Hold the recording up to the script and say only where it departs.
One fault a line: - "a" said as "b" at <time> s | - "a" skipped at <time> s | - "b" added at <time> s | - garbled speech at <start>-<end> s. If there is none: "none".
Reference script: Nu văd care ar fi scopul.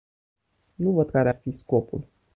none